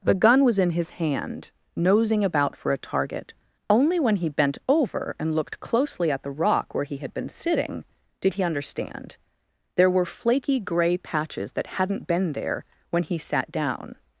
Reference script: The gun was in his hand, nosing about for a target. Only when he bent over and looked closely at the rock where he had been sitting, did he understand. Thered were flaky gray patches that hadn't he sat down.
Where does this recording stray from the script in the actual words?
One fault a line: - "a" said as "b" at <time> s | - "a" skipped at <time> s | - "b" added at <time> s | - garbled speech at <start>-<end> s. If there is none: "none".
- "Thered" said as "There" at 9.8 s
- "been there when" added at 12.1 s